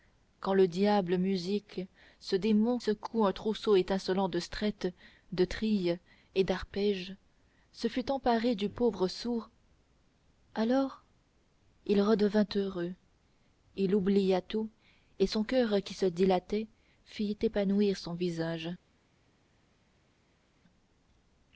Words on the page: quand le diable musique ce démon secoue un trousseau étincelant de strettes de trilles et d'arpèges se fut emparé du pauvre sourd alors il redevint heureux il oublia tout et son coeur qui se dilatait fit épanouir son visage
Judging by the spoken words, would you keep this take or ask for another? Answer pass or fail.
pass